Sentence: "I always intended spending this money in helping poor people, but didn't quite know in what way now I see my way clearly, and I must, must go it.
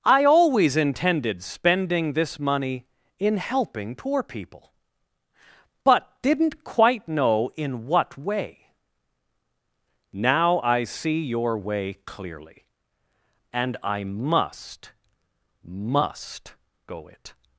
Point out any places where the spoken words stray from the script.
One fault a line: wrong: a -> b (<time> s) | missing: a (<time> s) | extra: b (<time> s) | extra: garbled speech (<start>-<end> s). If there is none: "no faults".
wrong: my -> your (11.2 s)